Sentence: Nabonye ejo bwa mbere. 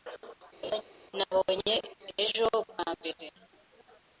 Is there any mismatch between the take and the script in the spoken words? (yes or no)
no